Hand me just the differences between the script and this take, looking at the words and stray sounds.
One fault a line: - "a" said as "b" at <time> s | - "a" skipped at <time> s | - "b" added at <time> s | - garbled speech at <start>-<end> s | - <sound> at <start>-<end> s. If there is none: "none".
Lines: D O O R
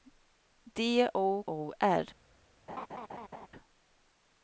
- laugh at 2.7-3.5 s